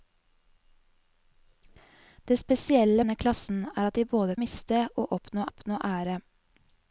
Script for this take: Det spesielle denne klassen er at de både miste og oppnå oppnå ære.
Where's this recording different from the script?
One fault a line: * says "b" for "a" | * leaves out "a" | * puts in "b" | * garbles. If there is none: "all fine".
all fine